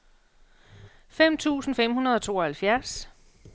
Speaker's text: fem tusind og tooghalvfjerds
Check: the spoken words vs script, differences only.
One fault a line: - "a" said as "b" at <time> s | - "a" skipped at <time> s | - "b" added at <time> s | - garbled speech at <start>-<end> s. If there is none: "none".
- "fem hundrede" added at 1.7 s